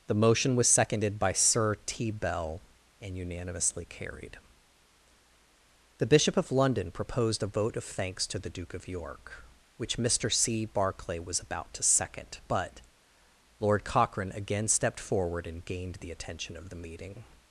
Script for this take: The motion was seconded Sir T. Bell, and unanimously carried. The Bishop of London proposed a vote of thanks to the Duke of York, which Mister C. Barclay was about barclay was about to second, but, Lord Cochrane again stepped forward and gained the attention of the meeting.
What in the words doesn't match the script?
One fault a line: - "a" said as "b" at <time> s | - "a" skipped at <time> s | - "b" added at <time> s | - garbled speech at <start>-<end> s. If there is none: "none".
- "by" added at 1.2 s
- "barclay was about" skipped at 11.7 s